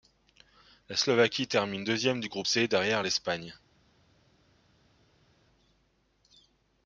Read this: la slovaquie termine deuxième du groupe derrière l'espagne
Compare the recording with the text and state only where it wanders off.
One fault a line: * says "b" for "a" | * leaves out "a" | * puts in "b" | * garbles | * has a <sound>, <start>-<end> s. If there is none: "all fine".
* puts in "c"